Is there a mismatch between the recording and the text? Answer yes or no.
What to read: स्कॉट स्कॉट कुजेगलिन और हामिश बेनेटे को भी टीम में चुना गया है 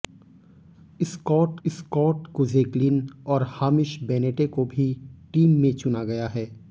no